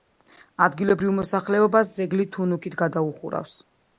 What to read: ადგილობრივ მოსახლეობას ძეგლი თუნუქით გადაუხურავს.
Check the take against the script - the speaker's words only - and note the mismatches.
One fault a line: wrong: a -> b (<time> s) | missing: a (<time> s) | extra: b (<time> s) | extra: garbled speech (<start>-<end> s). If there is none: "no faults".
no faults